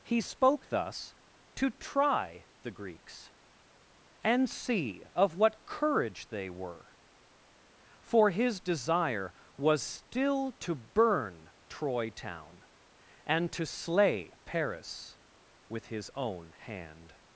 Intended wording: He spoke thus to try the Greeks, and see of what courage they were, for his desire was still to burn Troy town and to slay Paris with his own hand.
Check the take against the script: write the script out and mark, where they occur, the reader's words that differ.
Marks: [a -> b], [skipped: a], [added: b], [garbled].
He spoke thus to try the Greeks, and see of what courage they were, for his desire was still to burn Troy town and to slay Paris with his own hand.